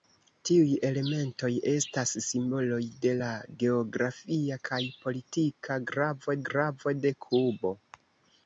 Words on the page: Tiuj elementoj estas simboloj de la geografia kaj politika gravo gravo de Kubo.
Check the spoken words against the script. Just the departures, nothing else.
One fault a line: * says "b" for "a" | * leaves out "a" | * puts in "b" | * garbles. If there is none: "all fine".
all fine